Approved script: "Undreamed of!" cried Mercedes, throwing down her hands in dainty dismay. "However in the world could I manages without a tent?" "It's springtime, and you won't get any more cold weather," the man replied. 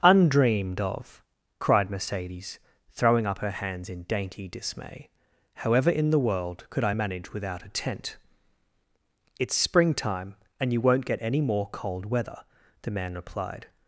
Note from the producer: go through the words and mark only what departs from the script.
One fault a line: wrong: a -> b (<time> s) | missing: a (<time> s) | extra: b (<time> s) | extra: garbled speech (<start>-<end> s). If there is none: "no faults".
wrong: down -> up (3.3 s)
wrong: manages -> manage (6.9 s)